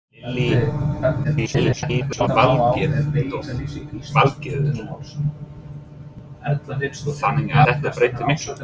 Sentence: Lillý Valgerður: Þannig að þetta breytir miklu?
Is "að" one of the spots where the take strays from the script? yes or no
yes